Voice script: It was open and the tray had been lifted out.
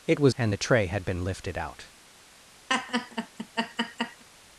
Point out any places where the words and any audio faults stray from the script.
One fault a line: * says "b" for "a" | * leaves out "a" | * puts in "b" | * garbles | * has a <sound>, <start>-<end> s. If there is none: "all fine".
* leaves out "open"
* has a laugh, 2.7-4.2 s